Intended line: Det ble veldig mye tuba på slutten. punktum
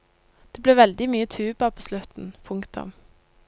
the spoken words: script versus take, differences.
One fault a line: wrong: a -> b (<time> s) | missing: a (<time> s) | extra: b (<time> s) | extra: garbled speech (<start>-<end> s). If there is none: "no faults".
no faults